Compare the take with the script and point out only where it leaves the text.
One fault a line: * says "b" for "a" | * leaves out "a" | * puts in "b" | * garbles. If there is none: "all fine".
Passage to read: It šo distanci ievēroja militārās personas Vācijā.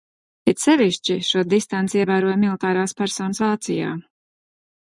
* puts in "sevišķi"